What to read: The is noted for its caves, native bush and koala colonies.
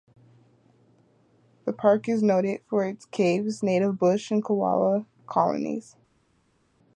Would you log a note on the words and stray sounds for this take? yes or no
yes